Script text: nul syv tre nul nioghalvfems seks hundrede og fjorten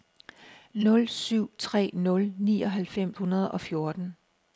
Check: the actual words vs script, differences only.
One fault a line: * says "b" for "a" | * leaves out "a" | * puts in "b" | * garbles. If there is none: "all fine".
* leaves out "seks"